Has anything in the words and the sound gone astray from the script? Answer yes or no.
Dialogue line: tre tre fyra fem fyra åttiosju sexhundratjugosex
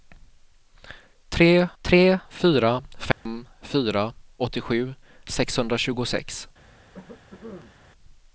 yes